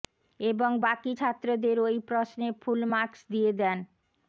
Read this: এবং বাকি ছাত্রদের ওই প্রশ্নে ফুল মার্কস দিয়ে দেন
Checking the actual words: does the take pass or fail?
pass